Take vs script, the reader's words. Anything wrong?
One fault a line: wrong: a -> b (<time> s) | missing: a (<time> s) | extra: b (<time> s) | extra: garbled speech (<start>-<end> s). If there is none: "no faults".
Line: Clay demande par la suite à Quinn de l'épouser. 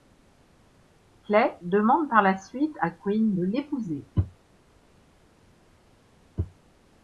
no faults